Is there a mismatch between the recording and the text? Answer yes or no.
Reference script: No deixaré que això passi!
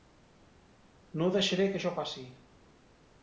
no